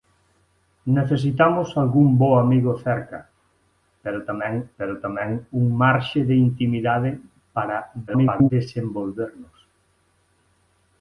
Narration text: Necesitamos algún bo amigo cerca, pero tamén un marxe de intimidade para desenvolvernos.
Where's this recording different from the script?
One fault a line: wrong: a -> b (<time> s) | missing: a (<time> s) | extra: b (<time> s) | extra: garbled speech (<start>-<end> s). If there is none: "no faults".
extra: pero tamén (4.8 s)
extra: garbled speech (8.1-8.5 s)